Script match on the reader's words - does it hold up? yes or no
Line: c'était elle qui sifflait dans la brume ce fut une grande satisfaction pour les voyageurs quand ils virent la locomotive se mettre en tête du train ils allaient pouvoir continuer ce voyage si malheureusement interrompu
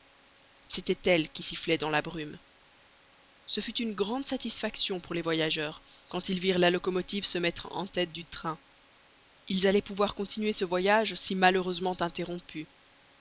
yes